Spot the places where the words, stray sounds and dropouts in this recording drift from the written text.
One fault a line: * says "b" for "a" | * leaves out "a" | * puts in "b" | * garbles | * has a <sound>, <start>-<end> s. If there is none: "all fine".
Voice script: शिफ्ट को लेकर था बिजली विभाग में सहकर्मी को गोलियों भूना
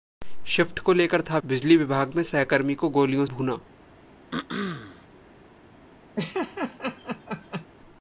* has a throat clearing, 4.3-5.1 s
* has a laugh, 6.2-7.7 s